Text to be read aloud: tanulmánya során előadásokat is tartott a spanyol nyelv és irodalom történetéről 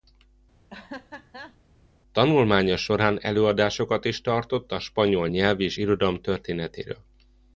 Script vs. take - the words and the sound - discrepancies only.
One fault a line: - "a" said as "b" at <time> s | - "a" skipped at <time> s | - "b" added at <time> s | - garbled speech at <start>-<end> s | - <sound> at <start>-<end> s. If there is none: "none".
- laugh at 0.7-1.6 s